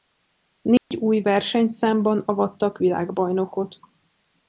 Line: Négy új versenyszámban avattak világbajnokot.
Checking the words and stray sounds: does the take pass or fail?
fail